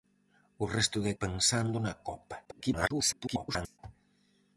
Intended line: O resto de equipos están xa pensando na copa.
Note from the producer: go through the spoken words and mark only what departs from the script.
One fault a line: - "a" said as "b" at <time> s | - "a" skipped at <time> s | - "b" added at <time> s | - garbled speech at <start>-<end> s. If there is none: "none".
- "equipos están xa" skipped at 1.1 s
- garbled speech at 2.4-3.8 s